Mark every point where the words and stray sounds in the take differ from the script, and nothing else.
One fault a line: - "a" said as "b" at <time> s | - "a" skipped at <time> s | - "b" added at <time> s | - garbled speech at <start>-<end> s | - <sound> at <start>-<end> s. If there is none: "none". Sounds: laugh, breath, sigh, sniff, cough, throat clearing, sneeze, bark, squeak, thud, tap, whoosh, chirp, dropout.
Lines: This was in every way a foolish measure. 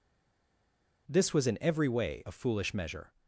none